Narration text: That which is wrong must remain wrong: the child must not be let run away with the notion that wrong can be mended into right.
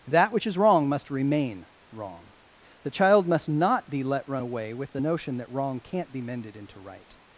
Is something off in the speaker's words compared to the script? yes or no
yes